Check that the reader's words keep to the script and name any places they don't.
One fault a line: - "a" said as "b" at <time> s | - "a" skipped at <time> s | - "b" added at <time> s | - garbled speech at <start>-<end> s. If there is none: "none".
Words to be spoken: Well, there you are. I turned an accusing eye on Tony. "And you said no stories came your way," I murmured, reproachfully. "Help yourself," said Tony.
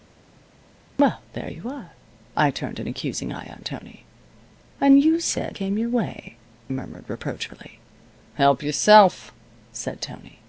- "no stories" skipped at 5.6 s
- "I" skipped at 6.4 s